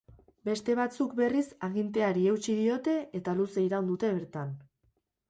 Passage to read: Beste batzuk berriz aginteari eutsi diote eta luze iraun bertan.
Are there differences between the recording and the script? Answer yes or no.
yes